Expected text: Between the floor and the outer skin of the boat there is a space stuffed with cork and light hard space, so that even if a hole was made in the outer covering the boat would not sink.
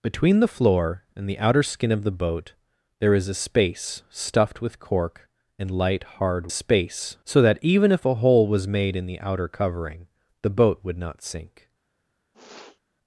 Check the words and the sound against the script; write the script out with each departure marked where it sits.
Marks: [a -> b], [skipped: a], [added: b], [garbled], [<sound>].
Between the floor and the outer skin of the boat there is a space stuffed with cork and light hard space, so that even if a hole was made in the outer covering the boat would not sink. [sniff]